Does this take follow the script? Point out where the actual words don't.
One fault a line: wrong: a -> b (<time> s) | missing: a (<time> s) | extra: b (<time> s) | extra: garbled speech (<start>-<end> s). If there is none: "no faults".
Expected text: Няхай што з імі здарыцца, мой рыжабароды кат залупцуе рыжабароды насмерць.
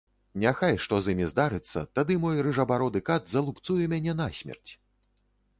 extra: тады (2.0 s)
wrong: рыжабароды -> мяне (3.9 s)